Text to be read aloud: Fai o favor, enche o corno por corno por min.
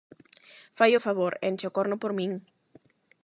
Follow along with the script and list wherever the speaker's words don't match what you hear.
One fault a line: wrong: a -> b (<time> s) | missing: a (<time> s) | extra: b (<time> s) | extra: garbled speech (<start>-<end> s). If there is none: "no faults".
missing: corno por (2.1 s)